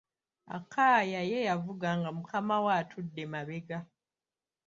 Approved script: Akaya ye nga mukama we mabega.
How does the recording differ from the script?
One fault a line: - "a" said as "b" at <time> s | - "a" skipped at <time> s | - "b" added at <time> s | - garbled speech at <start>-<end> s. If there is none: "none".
- "yavuga" added at 1.5 s
- "atudde" added at 2.8 s